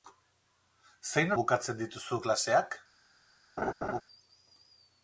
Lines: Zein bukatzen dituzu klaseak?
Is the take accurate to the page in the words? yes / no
yes